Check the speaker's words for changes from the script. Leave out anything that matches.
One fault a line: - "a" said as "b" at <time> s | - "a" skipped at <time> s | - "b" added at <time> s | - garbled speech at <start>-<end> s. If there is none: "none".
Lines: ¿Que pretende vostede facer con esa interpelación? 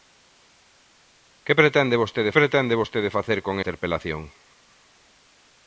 - "pretende vostede" added at 2.4 s
- "esa" skipped at 3.5 s